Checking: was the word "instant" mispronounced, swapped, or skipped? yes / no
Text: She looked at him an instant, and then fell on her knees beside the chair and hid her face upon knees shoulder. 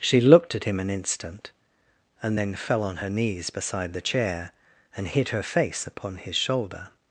no